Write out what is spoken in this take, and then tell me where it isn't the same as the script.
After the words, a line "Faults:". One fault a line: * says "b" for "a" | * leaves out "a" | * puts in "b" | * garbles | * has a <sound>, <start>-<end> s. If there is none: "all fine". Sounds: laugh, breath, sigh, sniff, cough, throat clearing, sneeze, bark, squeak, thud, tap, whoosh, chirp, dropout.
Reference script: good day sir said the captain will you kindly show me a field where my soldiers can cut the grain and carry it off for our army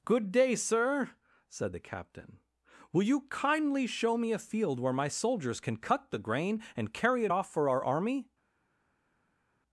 good day sir said the captain will you kindly show me a field where my soldiers can cut the grain and carry it off for our army
Faults:
all fine